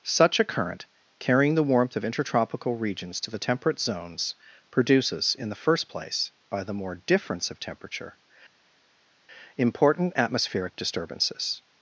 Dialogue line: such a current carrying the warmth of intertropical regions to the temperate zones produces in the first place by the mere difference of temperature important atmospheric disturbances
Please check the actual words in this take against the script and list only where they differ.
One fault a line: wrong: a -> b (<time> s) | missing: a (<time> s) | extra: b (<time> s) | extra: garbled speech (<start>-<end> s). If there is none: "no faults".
wrong: mere -> more (6.7 s)